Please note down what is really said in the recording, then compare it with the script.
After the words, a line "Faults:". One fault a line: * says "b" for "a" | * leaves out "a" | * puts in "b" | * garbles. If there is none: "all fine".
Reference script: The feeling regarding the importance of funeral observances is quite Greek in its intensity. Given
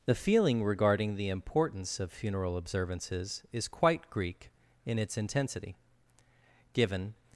The feeling regarding the importance of funeral observances is quite Greek in its intensity. Given
Faults:
all fine